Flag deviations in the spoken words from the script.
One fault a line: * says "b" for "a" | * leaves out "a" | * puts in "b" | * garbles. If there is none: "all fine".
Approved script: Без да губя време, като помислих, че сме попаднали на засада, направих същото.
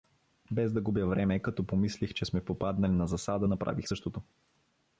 all fine